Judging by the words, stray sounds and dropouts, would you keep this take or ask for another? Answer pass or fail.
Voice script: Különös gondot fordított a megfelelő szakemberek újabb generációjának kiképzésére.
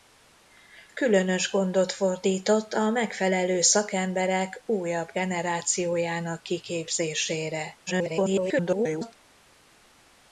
fail